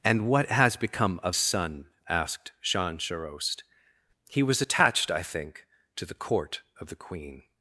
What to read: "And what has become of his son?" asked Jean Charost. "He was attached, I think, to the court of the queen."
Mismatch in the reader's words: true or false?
true